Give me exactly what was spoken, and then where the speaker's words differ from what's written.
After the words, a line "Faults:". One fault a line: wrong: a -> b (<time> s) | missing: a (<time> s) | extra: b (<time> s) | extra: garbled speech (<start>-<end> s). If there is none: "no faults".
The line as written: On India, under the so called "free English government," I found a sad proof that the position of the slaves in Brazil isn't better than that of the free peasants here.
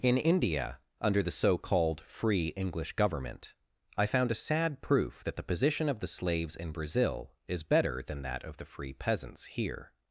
In India, under the so called "free English government," I found a sad proof that the position of the slaves in Brazil is better than that of the free peasants here.
Faults:
wrong: On -> In (0.0 s)
wrong: isn't -> is (7.5 s)